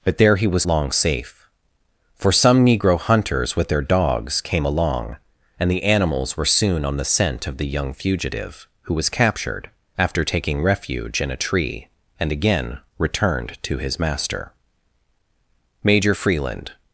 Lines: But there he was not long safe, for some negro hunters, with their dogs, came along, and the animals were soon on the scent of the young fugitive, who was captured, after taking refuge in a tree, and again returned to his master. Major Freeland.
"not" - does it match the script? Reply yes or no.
no